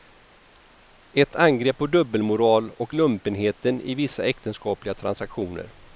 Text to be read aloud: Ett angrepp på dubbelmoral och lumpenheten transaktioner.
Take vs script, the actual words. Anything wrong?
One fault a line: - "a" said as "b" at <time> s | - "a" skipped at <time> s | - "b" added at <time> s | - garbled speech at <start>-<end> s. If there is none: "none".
- "i vissa äktenskapliga" added at 3.8 s